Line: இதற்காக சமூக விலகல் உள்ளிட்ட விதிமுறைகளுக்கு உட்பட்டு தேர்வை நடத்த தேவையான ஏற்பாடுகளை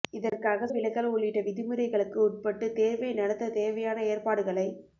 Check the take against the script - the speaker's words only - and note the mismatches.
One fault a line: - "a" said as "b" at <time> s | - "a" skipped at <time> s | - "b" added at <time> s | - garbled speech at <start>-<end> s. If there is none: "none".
- "சமூக" skipped at 0.7 s